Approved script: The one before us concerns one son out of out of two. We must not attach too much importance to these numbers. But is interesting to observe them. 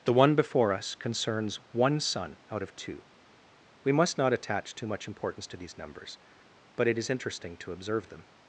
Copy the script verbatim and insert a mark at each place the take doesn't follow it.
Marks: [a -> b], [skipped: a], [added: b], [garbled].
The one before us concerns one son out of [skipped: out of] two. We must not attach too much importance to these numbers. But [added: it] is interesting to observe them.